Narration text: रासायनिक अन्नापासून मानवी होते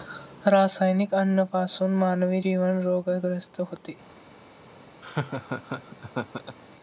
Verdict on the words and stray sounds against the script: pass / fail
fail